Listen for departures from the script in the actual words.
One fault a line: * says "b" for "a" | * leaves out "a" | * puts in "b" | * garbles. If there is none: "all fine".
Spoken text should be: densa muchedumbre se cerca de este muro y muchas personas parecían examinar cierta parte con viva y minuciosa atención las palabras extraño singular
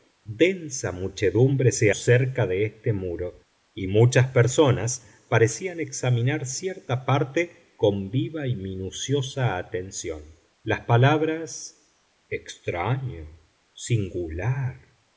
all fine